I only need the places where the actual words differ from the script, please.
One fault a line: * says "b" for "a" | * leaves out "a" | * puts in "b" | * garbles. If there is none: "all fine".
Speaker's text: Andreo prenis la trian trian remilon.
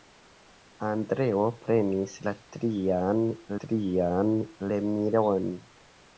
all fine